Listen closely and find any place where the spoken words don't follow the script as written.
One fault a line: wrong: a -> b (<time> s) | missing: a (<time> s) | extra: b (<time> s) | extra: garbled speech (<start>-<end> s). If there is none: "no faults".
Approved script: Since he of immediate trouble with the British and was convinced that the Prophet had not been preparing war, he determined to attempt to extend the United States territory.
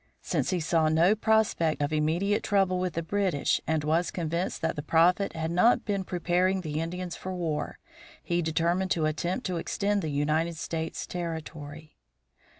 extra: saw no prospect (0.6 s)
extra: the Indians for (6.6 s)